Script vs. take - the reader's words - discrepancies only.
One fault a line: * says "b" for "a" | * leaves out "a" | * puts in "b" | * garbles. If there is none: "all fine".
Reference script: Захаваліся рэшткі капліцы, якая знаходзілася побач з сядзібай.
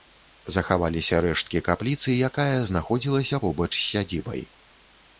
all fine